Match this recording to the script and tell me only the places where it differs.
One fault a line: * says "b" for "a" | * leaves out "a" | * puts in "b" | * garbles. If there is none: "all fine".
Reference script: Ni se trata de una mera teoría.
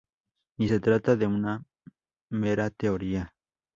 all fine